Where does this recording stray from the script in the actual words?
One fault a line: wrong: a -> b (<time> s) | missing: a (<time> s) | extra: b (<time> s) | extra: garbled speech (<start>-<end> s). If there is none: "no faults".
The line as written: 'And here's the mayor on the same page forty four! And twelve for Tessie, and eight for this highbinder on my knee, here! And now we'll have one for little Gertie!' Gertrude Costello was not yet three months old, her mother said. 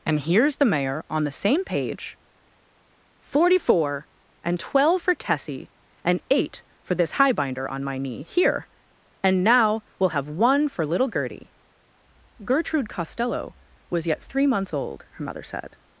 missing: not (14.1 s)